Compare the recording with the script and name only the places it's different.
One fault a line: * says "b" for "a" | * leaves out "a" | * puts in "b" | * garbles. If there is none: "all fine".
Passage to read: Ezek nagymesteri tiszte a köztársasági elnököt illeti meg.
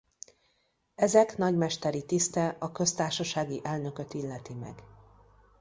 all fine